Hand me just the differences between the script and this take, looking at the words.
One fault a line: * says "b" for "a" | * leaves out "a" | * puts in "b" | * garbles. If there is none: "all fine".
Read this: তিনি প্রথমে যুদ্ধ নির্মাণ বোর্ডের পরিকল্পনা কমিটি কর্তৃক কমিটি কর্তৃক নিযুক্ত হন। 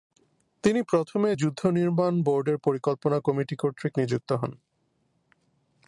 * leaves out "কমিটি কর্তৃক"